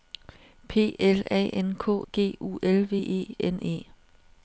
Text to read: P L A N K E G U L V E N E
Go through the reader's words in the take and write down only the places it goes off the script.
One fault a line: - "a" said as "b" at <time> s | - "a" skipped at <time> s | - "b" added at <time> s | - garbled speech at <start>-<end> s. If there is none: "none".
- "E" skipped at 2.1 s